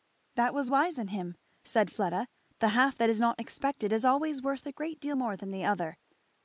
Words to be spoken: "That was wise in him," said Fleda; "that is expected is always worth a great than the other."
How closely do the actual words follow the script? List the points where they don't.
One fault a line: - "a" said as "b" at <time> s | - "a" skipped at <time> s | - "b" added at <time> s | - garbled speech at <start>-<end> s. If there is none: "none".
- "the half" added at 2.6 s
- "not" added at 3.2 s
- "deal more" added at 5.0 s